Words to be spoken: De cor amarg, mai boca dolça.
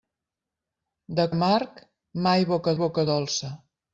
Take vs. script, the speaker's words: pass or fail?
fail